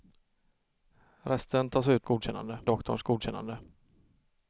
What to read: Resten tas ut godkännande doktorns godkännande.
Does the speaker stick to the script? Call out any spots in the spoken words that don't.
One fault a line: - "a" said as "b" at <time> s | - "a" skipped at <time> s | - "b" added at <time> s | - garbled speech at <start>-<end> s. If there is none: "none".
none